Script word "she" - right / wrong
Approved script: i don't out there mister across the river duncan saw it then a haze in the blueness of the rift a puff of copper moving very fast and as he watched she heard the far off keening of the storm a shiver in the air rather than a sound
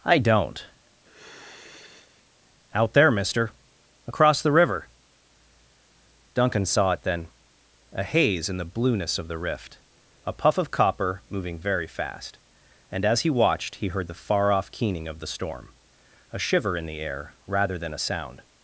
wrong